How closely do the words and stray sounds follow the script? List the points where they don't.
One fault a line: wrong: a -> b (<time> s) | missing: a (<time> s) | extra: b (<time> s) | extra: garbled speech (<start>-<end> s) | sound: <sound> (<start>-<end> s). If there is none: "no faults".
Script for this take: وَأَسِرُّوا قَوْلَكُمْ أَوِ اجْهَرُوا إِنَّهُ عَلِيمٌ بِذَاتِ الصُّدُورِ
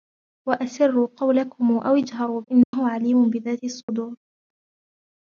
sound: dropout (2.6-2.7 s)
sound: dropout (3.8-3.9 s)